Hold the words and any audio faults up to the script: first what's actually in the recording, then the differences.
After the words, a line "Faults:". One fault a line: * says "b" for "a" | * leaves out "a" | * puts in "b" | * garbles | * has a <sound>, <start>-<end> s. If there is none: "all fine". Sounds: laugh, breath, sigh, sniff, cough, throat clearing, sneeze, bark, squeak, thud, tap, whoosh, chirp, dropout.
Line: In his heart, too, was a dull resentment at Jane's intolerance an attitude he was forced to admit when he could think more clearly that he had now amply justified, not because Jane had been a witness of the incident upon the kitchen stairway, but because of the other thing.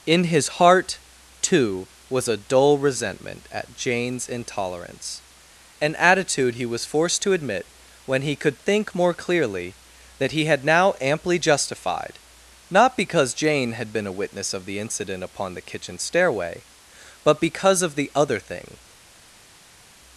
In his heart, too, was a dull resentment at Jane's intolerance an attitude he was forced to admit when he could think more clearly that he had now amply justified, not because Jane had been a witness of the incident upon the kitchen stairway, but because of the other thing.
Faults:
all fine